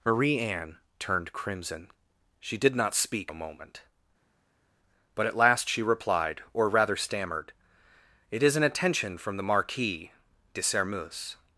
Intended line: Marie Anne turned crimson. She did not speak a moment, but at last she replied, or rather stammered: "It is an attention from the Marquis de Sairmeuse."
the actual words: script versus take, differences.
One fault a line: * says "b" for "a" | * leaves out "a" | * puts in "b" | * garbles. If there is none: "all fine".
all fine